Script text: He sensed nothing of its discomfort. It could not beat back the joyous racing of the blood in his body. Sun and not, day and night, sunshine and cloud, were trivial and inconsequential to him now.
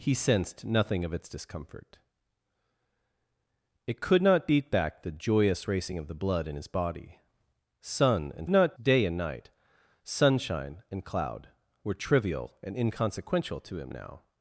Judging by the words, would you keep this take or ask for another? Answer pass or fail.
pass